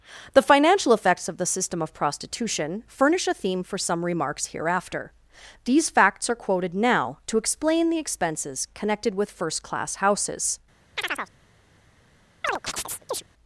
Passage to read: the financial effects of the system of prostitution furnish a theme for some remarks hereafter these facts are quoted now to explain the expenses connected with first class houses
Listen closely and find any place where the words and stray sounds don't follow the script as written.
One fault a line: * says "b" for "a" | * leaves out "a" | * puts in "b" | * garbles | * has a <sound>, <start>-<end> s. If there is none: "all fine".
* has a chirp, 11.0-11.3 s
* has a chirp, 12.4-13.2 s